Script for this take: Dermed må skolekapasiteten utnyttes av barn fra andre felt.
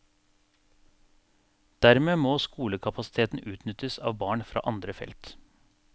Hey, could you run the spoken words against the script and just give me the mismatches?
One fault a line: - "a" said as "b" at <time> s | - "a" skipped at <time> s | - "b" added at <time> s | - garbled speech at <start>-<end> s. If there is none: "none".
none